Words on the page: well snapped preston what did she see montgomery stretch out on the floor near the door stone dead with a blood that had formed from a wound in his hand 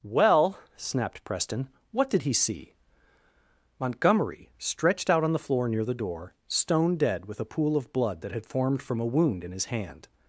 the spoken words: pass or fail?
fail